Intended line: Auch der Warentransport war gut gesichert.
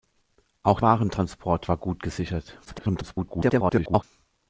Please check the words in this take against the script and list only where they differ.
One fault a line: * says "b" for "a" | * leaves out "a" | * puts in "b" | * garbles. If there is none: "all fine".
* leaves out "der"
* garbles